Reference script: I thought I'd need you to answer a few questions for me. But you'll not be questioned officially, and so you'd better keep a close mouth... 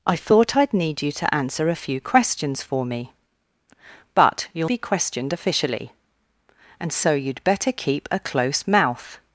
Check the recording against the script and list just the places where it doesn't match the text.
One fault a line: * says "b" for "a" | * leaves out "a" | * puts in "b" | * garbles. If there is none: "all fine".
* leaves out "not"